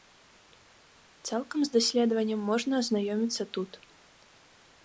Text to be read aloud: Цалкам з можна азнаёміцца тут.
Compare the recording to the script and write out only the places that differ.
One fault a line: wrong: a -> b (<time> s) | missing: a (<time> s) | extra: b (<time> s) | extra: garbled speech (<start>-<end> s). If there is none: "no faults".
extra: даследаваннем (1.8 s)